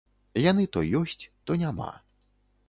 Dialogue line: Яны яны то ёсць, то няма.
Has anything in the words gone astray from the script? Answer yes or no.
yes